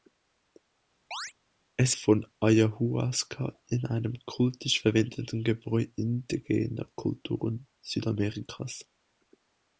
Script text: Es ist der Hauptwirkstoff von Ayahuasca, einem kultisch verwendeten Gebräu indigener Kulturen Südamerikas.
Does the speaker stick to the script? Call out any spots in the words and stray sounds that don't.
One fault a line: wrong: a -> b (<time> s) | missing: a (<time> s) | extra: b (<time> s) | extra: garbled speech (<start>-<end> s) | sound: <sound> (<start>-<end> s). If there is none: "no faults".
sound: chirp (1.1-1.3 s)
missing: ist der Hauptwirkstoff (2.0 s)